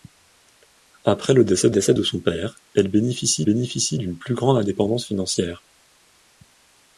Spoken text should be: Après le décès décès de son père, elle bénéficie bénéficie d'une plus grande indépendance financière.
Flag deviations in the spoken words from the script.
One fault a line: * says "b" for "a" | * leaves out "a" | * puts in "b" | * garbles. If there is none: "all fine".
all fine